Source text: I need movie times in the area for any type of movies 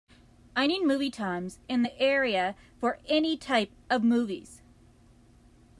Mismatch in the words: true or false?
false